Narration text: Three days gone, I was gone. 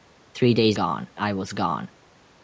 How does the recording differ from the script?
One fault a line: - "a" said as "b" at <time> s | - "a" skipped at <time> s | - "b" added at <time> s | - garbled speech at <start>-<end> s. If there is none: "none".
none